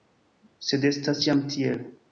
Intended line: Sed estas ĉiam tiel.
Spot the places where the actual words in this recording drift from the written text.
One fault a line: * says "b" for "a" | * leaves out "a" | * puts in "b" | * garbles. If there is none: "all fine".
all fine